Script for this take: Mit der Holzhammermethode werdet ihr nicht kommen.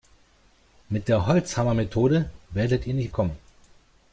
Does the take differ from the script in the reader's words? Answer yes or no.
no